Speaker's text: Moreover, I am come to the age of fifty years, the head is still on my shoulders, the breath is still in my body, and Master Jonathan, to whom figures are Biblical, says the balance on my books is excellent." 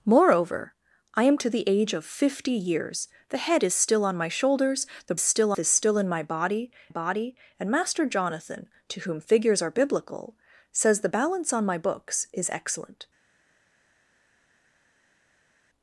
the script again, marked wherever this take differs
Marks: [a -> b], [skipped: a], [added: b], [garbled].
Moreover, I am [skipped: come] to the age of fifty years, the head is still on my shoulders, the [breath -> still] is still in my body, [added: body] and Master Jonathan, to whom figures are Biblical, says the balance on my books is excellent."